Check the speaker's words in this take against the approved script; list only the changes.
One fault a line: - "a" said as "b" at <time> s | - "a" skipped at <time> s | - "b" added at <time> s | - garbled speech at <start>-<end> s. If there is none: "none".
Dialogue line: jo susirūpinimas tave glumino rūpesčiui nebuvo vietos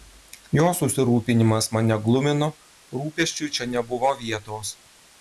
- "tave" said as "mane" at 1.8 s
- "čia" added at 3.6 s